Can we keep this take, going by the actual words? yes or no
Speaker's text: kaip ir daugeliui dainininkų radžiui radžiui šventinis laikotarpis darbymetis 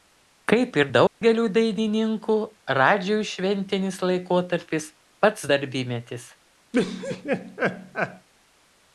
no